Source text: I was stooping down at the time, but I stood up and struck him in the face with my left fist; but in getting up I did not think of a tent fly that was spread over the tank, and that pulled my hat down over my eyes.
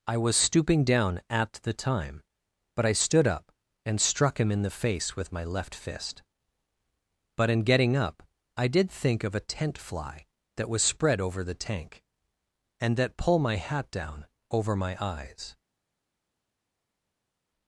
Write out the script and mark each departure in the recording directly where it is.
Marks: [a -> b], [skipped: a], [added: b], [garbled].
I was stooping down at the time, but I stood up and struck him in the face with my left fist; but in getting up I did [skipped: not] think of a tent fly that was spread over the tank, and that [pulled -> pull] my hat down over my eyes.